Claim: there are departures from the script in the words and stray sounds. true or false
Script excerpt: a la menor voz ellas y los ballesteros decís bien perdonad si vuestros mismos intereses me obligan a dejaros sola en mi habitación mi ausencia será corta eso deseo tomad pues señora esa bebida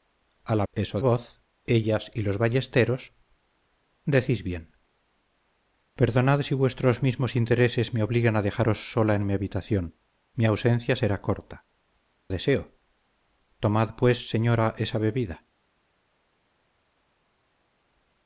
true